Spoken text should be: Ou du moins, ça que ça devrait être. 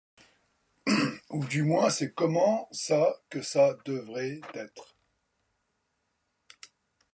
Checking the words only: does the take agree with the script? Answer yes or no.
no